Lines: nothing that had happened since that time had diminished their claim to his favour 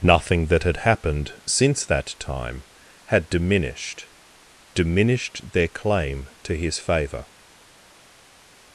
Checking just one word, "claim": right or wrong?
right